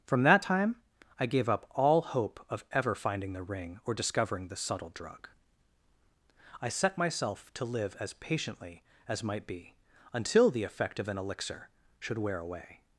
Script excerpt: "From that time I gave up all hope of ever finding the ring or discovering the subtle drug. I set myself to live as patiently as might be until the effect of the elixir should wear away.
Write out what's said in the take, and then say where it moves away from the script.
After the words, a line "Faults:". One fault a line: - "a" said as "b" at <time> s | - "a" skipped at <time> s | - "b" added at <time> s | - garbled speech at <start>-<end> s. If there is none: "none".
"From that time I gave up all hope of ever finding the ring or discovering the subtle drug. I set myself to live as patiently as might be until the effect of an elixir should wear away.
Faults:
- "the" said as "an" at 11.1 s